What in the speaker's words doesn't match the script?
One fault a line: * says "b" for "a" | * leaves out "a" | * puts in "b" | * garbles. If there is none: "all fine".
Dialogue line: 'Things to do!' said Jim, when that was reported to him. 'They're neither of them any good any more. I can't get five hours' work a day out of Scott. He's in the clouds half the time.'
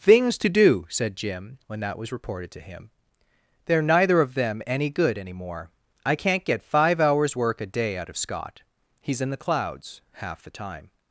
all fine